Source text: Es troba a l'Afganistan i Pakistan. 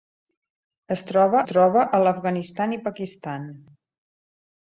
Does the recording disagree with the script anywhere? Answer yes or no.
yes